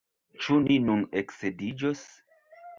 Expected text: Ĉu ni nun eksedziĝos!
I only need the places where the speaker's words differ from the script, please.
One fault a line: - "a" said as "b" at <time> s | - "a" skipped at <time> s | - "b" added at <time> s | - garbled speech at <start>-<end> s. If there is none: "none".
none